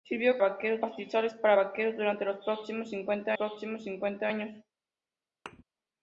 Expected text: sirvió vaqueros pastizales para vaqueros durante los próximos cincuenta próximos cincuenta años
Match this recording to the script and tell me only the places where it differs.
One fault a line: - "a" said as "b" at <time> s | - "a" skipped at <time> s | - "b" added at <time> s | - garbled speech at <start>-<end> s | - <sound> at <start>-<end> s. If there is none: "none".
- thud at 5.5-5.6 s